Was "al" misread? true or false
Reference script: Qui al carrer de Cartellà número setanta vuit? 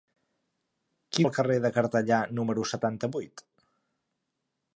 false